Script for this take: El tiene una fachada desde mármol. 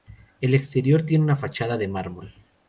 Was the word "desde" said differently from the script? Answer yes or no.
yes